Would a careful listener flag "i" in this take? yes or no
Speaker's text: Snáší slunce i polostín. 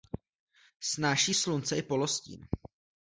no